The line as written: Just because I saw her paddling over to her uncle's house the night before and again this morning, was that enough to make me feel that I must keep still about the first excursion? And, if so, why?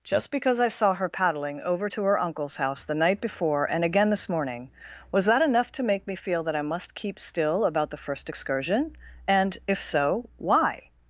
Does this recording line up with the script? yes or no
yes